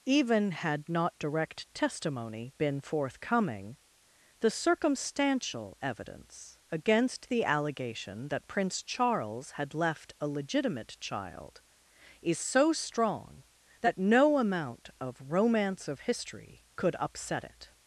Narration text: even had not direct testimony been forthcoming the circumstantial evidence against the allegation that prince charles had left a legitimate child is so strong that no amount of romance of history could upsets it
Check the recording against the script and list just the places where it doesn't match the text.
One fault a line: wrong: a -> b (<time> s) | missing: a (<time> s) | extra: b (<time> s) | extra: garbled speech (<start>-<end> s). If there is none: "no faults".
wrong: upsets -> upset (17.0 s)